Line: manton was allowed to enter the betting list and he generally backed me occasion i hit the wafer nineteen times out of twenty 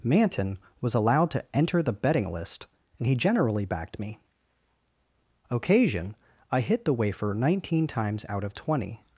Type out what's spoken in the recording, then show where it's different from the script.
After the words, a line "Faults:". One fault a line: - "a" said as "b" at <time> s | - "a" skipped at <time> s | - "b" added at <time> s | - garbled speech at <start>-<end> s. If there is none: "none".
manton was allowed to enter the betting list and he generally backed me occasion i hit the wafer nineteen times out of twenty
Faults:
none